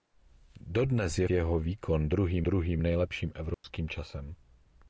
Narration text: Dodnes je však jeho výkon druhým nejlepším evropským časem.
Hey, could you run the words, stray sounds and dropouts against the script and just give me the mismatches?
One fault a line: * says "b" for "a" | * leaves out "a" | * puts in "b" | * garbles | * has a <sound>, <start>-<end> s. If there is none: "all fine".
* leaves out "však"
* puts in "druhým"
* has a dropout, 3.5-3.6 s